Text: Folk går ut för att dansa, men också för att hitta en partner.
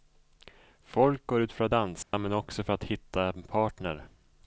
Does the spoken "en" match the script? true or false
true